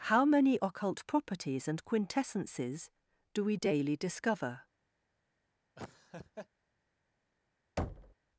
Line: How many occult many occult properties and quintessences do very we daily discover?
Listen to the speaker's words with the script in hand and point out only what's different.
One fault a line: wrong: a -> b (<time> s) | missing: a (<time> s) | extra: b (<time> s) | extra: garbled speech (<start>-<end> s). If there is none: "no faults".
missing: many occult (1.1 s)
missing: very (3.4 s)